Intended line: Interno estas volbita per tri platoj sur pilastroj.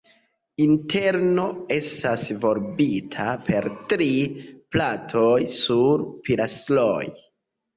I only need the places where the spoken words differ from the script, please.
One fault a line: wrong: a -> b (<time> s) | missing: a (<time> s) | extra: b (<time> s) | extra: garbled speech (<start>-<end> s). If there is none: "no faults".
no faults